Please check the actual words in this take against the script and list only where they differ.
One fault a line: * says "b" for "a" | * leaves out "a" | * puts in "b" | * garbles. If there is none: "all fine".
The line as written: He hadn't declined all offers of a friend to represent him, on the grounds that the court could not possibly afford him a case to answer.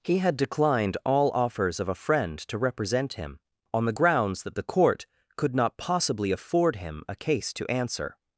* says "had" for "hadn't"